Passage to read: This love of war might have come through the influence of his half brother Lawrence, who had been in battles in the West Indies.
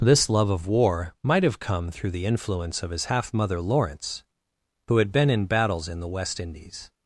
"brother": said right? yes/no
no